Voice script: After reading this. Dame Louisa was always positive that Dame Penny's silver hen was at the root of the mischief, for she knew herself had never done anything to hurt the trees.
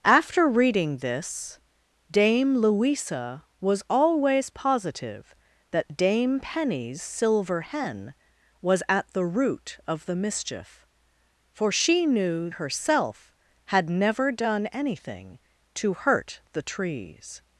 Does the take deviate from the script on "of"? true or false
false